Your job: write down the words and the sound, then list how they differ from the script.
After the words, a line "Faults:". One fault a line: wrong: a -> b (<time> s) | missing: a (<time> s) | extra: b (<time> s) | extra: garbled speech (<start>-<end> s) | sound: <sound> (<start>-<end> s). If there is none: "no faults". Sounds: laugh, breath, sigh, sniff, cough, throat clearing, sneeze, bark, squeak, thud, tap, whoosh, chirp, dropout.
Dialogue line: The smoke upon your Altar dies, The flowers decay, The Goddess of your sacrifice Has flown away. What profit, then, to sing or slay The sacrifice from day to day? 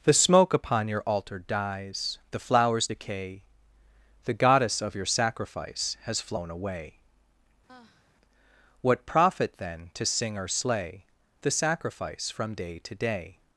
The smoke upon your Altar dies, The flowers decay, The Goddess of your sacrifice Has flown away. What profit, then, to sing or slay The sacrifice from day to day?
Faults:
sound: sigh (7.7-8.2 s)